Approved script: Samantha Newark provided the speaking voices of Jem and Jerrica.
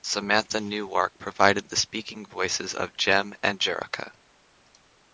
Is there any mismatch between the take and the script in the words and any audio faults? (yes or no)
no